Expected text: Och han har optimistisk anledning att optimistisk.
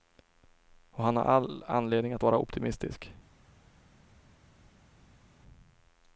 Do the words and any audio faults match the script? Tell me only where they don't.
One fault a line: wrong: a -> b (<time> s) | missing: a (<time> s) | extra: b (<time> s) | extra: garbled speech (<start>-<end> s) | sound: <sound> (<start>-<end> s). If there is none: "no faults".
wrong: optimistisk -> all (1.2 s)
extra: vara (2.2 s)